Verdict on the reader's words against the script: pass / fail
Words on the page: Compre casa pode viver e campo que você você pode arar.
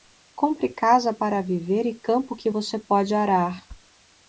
fail